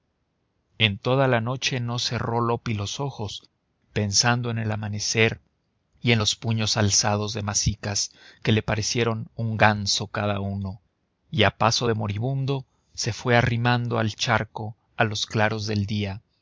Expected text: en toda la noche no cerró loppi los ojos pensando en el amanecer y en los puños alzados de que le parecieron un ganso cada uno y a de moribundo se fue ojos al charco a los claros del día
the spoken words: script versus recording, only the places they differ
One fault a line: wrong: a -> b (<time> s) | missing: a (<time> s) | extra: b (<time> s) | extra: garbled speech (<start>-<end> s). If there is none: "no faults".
extra: masicas (7.4 s)
extra: paso (11.6 s)
wrong: ojos -> arrimando (13.4 s)